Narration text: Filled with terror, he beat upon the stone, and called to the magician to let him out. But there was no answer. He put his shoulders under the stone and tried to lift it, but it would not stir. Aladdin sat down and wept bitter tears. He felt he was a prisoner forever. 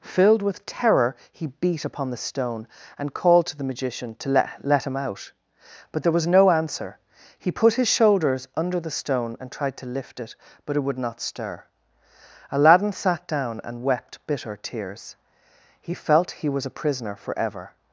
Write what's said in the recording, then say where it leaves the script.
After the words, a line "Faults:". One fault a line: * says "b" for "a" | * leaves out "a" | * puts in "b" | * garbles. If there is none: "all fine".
Filled with terror, he beat upon the stone, and called to the magician to let let him out. But there was no answer. He put his shoulders under the stone and tried to lift it, but it would not stir. Aladdin sat down and wept bitter tears. He felt he was a prisoner forever.
Faults:
* puts in "let"